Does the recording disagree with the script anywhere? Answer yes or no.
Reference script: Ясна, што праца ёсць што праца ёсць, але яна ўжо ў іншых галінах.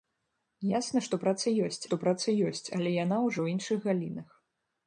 no